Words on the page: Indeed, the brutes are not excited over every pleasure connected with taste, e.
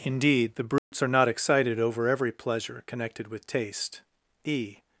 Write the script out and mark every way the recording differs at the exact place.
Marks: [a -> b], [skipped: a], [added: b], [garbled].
Indeed, the brutes are not excited over every pleasure connected with taste, e.